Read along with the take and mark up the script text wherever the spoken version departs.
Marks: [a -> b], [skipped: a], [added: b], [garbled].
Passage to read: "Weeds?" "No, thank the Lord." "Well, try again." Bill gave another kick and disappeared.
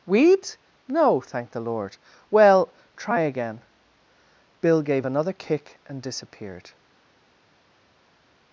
"Weeds?" "No, thank the Lord." "Well, try again." Bill gave another kick and disappeared.